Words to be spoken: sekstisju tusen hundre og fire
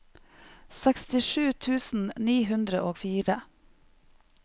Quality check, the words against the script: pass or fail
fail